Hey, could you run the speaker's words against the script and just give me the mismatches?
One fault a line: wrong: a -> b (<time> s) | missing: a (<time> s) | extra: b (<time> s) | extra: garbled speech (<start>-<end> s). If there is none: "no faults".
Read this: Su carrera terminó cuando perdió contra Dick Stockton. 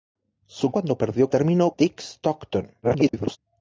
missing: carrera terminó (0.7 s)
wrong: contra -> terminó (1.3 s)
extra: garbled speech (2.8-3.4 s)